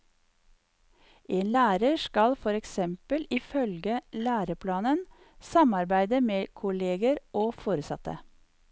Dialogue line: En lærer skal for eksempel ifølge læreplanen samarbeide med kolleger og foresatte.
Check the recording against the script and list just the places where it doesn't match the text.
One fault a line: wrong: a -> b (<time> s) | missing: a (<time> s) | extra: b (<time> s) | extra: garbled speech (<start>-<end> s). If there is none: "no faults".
no faults